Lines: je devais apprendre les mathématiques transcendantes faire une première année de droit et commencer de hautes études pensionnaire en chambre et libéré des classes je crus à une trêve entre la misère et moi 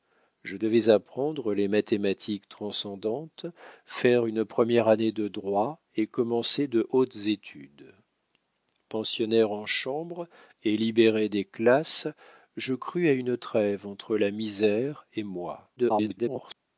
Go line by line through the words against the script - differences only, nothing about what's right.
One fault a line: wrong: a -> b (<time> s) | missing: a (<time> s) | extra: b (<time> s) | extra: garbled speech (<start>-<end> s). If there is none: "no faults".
extra: garbled speech (15.8-16.5 s)